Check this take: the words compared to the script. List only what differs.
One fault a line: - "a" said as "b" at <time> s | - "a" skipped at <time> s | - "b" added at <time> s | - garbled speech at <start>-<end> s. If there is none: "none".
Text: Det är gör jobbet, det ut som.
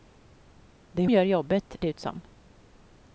none